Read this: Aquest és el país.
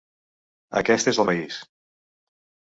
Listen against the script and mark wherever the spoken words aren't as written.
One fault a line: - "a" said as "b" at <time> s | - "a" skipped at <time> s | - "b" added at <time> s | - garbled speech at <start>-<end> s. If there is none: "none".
none